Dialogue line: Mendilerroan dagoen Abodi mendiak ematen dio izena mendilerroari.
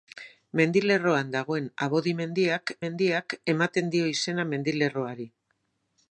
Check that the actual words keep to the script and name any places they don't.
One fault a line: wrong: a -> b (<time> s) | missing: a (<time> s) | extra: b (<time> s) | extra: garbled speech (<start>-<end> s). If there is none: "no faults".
extra: mendiak (2.9 s)